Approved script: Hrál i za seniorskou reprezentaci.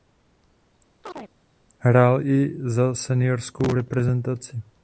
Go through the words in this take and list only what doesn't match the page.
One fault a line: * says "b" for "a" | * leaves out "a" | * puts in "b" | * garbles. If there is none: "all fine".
all fine